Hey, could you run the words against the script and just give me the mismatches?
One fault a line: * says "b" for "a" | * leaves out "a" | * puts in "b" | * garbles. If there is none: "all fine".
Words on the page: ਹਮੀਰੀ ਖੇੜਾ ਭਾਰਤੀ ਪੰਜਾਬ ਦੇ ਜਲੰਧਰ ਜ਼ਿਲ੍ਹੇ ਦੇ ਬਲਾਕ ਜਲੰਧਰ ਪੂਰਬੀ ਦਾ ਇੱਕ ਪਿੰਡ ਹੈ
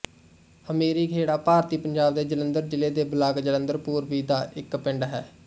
all fine